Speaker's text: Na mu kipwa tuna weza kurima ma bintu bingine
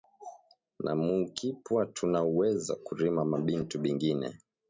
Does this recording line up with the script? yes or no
yes